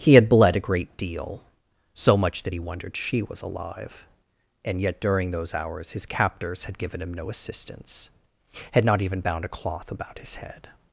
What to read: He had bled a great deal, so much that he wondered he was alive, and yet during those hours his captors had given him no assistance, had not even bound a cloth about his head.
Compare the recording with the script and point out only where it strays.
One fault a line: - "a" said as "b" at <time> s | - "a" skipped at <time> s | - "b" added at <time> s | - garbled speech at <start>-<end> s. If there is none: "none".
- "he" said as "she" at 2.9 s